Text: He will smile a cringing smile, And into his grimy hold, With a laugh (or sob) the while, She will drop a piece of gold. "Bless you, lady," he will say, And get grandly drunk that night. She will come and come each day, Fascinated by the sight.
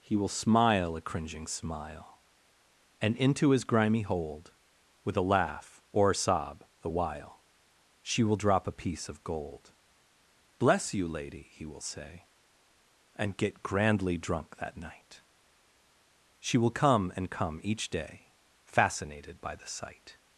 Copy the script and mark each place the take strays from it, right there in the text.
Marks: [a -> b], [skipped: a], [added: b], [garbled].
He will smile a cringing smile, And into his grimy hold, With a laugh (or [added: a] sob) the while, She will drop a piece of gold. "Bless you, lady," he will say, And get grandly drunk that night. She will come and come each day, Fascinated by the sight.